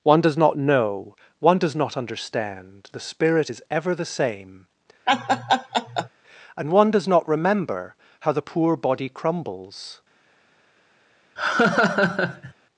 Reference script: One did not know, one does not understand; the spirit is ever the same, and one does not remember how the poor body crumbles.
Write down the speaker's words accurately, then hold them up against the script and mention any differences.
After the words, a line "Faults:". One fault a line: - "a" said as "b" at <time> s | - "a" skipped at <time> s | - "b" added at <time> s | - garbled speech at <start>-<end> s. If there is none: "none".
One does not know, one does not understand; the spirit is ever the same, and one does not remember how the poor body crumbles.
Faults:
- "did" said as "does" at 0.2 s